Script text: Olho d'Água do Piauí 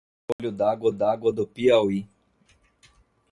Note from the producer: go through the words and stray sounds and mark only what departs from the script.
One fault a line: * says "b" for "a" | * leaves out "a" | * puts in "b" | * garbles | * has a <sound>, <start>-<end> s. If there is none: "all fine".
* has a dropout, 0.3-0.4 s
* puts in "d'Água"